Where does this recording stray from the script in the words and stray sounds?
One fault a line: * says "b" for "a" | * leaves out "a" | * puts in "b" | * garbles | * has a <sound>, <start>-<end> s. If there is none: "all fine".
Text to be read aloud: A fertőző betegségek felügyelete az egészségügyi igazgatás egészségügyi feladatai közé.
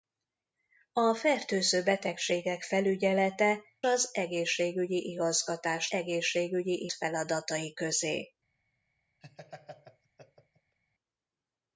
* has a laugh, 9.2-10.8 s